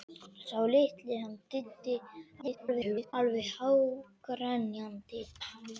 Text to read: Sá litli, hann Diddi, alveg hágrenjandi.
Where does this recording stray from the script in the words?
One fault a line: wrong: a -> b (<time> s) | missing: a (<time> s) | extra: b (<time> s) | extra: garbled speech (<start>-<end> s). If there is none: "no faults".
extra: garbled speech (2.4-3.1 s)